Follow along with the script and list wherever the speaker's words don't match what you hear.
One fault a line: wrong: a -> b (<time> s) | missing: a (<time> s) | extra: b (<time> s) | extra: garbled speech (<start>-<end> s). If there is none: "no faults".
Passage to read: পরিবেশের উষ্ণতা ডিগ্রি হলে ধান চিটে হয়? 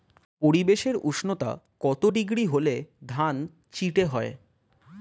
extra: কত (1.8 s)